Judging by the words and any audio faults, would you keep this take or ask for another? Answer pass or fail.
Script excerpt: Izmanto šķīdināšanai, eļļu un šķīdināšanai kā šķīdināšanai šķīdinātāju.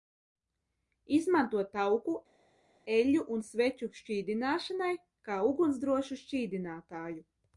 fail